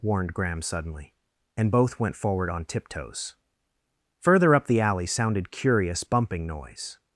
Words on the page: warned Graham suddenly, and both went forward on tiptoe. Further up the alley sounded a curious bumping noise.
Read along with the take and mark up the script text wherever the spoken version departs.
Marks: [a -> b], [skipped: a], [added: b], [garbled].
warned Graham suddenly, and both went forward on [tiptoe. -> tiptoes] Further up the alley sounded [skipped: a] curious bumping noise.